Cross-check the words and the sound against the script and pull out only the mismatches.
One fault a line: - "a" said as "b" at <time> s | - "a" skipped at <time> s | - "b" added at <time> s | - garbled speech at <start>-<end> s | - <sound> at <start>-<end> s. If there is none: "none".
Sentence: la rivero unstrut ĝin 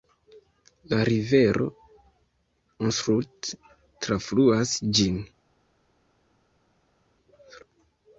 - "trafluas" added at 4.1 s